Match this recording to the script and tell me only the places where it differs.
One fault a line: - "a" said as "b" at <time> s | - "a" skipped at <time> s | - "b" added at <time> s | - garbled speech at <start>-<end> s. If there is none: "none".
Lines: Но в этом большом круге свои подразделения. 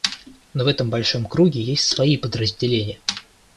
- "есть" added at 1.6 s